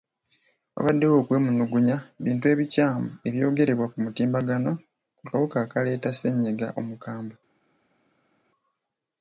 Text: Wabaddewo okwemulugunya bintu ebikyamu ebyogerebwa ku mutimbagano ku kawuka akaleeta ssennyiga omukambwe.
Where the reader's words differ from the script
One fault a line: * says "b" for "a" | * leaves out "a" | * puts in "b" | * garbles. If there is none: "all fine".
all fine